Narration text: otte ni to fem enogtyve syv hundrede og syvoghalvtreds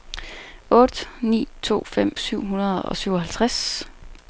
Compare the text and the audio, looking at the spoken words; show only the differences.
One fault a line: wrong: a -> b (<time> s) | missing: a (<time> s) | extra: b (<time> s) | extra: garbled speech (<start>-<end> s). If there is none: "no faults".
missing: enogtyve (2.2 s)